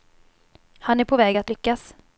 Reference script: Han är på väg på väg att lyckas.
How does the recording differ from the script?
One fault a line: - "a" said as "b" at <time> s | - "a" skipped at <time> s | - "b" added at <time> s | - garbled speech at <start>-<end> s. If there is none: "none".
- "på väg" skipped at 1.4 s